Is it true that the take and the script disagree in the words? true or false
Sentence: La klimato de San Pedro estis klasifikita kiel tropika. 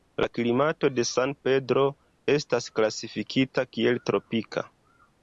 true